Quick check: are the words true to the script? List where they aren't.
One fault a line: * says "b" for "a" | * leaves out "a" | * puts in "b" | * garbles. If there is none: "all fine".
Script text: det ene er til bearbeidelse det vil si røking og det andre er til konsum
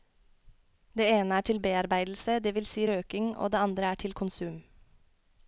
all fine